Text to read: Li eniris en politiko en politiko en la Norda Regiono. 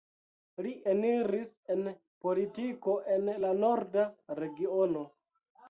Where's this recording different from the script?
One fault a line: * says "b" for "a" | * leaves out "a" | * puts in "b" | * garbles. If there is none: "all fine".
* leaves out "politiko en"